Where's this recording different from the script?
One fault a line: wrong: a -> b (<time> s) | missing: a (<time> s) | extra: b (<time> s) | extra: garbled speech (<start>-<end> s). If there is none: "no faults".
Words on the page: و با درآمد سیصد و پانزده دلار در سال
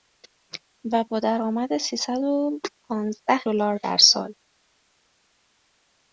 no faults